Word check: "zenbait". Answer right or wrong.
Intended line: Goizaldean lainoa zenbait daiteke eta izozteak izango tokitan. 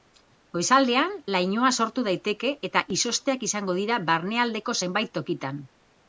wrong